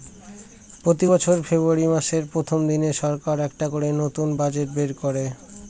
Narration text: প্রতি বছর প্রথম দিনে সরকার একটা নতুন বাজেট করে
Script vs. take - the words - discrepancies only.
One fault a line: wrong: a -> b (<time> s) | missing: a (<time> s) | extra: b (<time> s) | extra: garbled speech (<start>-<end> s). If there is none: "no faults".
extra: ফেব্রুয়ারী মাসের (1.4 s)
extra: করে (3.7 s)
extra: বের (4.7 s)